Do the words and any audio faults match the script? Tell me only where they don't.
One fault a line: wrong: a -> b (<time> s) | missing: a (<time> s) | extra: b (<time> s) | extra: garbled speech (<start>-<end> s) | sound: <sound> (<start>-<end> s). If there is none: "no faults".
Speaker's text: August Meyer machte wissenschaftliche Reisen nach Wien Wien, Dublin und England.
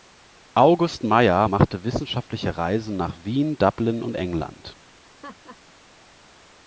missing: Wien (3.6 s)
sound: laugh (5.0-5.6 s)